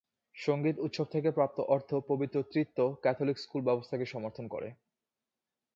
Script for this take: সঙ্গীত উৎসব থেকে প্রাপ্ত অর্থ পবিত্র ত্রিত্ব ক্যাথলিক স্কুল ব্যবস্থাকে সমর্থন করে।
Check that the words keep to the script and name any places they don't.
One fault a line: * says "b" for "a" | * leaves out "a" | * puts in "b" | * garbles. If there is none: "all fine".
all fine